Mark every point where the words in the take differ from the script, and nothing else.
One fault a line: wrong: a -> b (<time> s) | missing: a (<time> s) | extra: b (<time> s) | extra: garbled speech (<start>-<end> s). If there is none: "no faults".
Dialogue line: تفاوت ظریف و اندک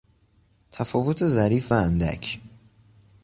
no faults